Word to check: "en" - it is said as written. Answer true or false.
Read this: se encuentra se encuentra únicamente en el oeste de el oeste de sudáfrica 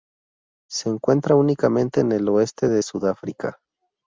true